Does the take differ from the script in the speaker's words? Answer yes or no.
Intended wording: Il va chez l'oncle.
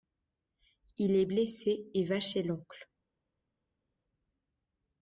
yes